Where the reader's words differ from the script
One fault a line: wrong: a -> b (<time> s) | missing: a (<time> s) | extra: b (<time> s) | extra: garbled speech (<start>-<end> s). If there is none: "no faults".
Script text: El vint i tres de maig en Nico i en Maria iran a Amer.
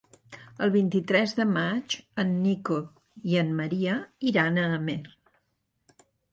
no faults